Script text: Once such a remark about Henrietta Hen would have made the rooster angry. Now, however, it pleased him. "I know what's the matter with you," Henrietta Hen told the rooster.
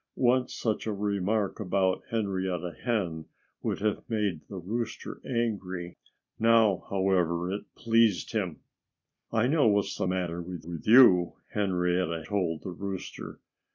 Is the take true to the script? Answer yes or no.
no